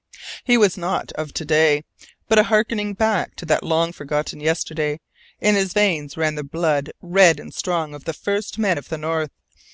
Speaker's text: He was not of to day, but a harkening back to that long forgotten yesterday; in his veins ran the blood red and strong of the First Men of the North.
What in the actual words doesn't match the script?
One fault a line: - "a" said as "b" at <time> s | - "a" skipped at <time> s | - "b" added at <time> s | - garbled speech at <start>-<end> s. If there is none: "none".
none